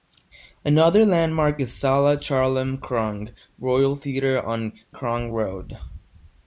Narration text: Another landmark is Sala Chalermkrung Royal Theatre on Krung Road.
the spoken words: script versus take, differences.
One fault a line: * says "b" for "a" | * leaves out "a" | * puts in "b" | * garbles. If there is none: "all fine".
all fine